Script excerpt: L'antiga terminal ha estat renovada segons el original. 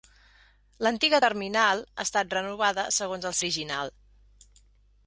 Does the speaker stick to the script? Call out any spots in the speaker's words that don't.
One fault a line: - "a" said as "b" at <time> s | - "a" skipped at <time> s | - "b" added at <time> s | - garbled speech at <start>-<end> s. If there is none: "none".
none